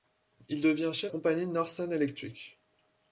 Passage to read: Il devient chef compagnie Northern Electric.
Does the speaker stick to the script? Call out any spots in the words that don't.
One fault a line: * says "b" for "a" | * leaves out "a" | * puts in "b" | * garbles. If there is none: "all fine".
all fine